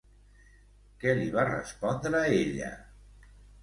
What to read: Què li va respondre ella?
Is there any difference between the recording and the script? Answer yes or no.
no